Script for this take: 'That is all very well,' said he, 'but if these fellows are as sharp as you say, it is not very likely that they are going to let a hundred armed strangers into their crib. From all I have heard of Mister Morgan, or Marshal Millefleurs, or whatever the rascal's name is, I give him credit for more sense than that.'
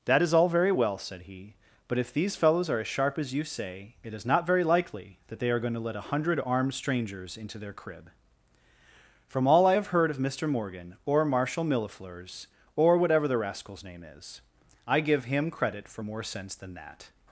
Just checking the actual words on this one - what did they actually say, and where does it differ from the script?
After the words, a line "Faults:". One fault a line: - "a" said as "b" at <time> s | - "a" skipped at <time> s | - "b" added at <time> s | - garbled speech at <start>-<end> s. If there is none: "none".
'That is all very well,' said he, 'but if these fellows are as sharp as you say, it is not very likely that they are going to let a hundred armed strangers into their crib. From all I have heard of Mister Morgan, or Marshal Millefleurs, or whatever the rascal's name is, I give him credit for more sense than that.'
Faults:
none